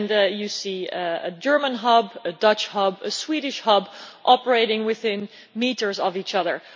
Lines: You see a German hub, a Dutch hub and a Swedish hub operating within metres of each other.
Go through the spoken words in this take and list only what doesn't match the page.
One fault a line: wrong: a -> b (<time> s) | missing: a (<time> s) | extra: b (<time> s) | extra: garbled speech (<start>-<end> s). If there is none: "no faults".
no faults